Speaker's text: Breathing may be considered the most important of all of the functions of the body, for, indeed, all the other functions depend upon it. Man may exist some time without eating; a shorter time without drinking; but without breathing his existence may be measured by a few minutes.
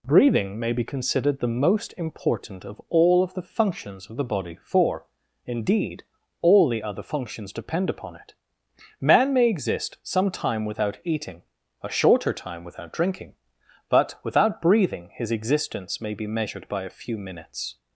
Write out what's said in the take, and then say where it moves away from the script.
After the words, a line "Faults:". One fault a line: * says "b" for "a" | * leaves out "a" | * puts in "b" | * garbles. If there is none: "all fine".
Breathing may be considered the most important of all of the functions of the body, for, indeed, all the other functions depend upon it. Man may exist some time without eating; a shorter time without drinking; but without breathing his existence may be measured by a few minutes.
Faults:
all fine